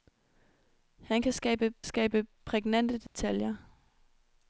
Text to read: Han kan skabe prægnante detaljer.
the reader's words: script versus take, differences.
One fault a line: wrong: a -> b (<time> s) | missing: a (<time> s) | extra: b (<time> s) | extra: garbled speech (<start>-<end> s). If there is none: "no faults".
extra: skabe (1.8 s)